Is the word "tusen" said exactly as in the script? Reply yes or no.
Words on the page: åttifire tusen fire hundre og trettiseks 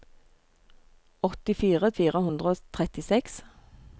no